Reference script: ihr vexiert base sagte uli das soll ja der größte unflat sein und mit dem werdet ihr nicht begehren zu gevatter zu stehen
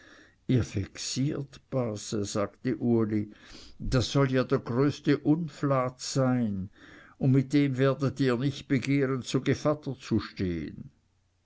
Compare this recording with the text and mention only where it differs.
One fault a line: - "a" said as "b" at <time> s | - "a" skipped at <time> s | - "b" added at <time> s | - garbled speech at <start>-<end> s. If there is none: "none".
none